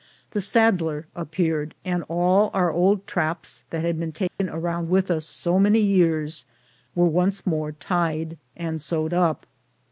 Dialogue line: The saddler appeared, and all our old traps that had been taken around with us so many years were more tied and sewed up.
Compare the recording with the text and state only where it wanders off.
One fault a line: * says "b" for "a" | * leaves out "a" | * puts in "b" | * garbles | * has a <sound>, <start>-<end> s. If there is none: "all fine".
* has a dropout, 4.3-4.4 s
* puts in "once"